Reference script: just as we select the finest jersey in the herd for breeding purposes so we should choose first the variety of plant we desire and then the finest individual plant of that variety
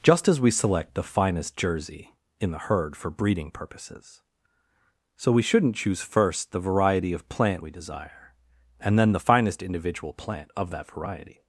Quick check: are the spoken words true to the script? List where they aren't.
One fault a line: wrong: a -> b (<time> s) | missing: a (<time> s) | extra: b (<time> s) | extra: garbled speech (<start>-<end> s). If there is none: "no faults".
wrong: should -> shouldn't (5.4 s)